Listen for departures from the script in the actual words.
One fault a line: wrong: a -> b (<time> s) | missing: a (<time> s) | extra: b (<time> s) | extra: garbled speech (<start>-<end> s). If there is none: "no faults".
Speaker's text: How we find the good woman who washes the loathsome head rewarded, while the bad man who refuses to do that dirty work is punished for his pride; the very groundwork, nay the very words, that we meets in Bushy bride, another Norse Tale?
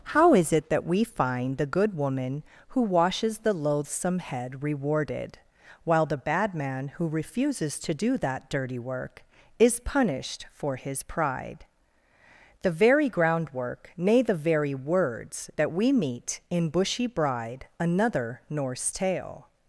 extra: is it that (0.3 s)
wrong: meets -> meet (15.9 s)